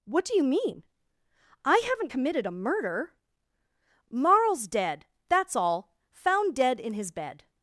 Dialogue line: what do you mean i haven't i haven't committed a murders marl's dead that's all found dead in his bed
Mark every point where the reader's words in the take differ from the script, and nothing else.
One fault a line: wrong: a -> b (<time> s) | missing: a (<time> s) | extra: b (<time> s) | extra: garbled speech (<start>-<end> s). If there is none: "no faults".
missing: i haven't (2.1 s)
wrong: murders -> murder (2.5 s)